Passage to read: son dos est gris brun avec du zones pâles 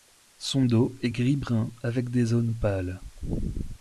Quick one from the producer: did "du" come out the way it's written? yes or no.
no